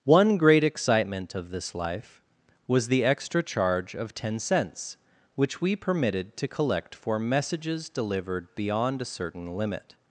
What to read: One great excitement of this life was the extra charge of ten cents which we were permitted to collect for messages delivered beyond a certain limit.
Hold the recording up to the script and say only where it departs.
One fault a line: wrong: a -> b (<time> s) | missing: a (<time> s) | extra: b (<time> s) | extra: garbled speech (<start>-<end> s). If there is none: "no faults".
missing: were (5.8 s)